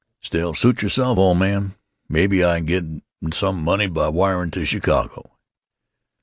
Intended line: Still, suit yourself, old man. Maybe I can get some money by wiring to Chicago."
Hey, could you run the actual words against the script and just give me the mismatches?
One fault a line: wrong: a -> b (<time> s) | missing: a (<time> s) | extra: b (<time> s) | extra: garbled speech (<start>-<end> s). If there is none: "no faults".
no faults